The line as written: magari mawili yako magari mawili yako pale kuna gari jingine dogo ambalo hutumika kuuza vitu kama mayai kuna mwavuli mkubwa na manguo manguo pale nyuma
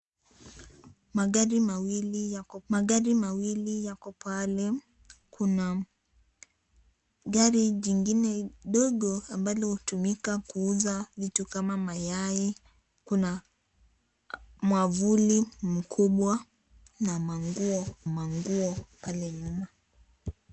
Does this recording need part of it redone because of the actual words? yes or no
no